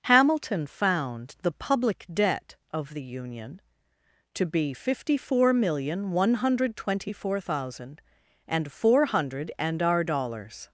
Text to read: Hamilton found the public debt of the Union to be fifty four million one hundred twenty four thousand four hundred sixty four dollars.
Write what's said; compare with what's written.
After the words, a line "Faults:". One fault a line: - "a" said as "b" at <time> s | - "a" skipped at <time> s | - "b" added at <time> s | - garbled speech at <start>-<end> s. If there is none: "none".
Hamilton found the public debt of the Union to be fifty four million one hundred twenty four thousand and four hundred and our dollars.
Faults:
- "and" added at 8.5 s
- "sixty four" said as "and our" at 9.6 s